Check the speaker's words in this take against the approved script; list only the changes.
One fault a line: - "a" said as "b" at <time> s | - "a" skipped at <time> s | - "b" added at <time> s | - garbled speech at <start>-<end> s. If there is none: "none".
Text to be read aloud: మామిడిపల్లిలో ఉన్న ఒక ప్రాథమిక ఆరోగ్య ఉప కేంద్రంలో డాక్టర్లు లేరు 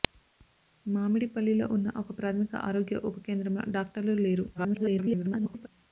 - garbled speech at 4.5-5.7 s